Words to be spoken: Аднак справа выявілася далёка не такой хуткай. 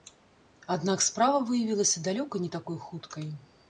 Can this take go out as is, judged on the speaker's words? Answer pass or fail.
pass